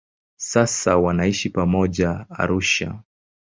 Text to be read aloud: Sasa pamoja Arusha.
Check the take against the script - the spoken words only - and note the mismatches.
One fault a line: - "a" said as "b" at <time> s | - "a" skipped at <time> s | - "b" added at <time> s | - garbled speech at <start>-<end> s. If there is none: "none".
- "wanaishi" added at 1.0 s